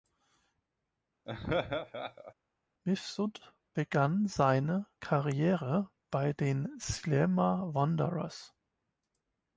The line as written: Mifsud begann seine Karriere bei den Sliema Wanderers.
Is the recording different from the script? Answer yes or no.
no